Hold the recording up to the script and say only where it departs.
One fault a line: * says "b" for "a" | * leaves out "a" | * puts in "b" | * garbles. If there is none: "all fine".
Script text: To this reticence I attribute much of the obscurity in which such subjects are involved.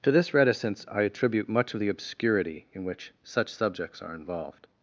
all fine